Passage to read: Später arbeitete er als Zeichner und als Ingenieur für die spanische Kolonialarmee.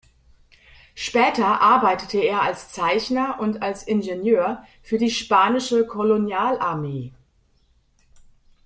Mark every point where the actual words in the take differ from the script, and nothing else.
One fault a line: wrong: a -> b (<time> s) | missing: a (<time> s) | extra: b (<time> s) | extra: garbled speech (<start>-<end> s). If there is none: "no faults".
no faults